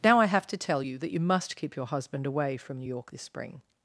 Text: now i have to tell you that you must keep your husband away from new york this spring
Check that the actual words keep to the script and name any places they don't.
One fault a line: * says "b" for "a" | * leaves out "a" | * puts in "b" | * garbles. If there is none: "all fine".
all fine